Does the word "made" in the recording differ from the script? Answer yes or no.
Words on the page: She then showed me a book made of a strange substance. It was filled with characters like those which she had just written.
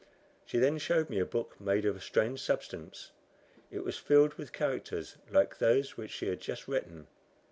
no